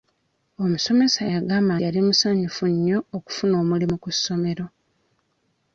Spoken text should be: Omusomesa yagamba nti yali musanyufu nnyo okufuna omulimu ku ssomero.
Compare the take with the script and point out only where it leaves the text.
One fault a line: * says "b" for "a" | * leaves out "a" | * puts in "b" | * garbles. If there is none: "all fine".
* leaves out "nti"